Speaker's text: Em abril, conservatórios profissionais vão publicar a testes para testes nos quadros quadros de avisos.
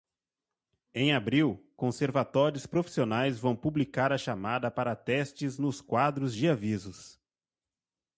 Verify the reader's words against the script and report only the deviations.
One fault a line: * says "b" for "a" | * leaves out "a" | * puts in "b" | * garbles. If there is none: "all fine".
* says "chamada" for "testes"
* leaves out "quadros"